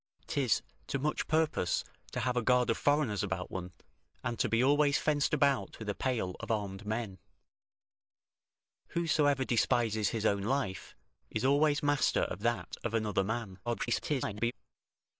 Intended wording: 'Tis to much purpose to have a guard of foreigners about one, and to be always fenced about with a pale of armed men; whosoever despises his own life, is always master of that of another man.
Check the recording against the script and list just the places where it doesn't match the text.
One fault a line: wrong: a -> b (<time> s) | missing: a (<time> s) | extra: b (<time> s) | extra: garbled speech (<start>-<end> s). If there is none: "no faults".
extra: garbled speech (13.7-14.5 s)